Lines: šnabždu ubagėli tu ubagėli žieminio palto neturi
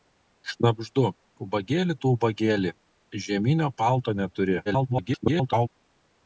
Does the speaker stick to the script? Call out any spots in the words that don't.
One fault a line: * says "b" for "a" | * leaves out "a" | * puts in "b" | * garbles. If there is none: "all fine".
* garbles